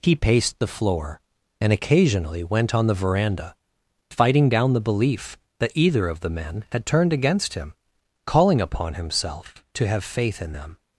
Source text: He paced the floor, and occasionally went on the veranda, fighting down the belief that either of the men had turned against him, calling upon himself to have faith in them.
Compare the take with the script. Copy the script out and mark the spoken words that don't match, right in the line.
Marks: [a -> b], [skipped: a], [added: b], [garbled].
He paced the floor, and occasionally went on the veranda, fighting down the belief that either of the men had turned against him, calling upon himself to have faith in them.